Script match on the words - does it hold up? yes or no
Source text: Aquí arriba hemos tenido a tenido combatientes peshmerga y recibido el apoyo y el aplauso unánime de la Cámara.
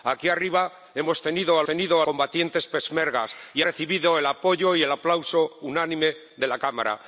yes